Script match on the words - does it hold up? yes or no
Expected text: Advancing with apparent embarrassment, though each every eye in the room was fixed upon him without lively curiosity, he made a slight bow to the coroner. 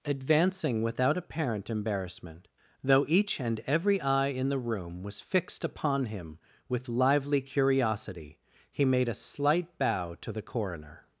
no